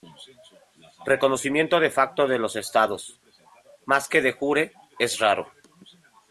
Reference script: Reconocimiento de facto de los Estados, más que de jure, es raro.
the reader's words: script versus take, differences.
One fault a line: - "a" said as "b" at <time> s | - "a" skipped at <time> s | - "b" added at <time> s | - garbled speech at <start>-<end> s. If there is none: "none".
none